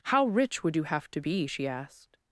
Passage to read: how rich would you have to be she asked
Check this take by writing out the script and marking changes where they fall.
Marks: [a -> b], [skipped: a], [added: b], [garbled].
how rich would you have to be she asked